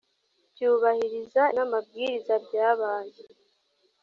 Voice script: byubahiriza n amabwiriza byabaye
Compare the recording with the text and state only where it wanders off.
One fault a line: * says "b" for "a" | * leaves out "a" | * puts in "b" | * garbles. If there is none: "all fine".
all fine